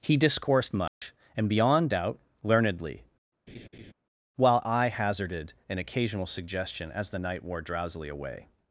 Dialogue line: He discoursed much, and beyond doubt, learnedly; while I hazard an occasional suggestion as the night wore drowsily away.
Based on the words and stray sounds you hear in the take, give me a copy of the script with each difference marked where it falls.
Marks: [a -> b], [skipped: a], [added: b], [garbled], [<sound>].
He discoursed much, [dropout] and beyond doubt, learnedly; [laugh] while I [hazard -> hazarded] an occasional suggestion as the night wore drowsily away.